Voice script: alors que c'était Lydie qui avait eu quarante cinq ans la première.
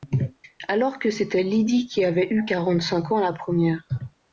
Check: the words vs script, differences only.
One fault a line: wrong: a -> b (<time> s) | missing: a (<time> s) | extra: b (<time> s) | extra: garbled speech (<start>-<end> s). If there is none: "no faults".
no faults